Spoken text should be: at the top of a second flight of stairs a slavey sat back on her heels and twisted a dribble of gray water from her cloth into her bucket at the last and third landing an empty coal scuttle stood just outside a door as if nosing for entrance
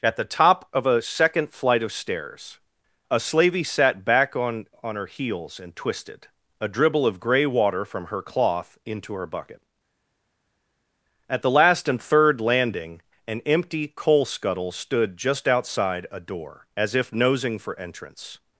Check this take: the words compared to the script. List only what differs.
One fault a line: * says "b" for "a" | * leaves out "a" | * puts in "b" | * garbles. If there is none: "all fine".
* puts in "on"